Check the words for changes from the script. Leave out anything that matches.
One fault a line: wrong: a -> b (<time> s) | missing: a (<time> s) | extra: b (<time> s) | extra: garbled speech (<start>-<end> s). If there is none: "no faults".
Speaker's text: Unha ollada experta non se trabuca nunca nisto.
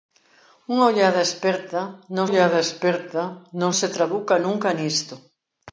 extra: ollada experta non (2.3 s)